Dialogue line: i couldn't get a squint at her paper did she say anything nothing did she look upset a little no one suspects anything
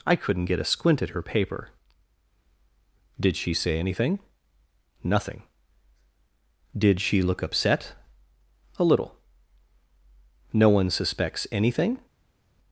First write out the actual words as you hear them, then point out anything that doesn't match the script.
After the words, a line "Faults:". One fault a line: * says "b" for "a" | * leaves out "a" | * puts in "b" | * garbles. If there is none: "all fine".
i couldn't get a squint at her paper did she say anything nothing did she look upset a little no one suspects anything
Faults:
all fine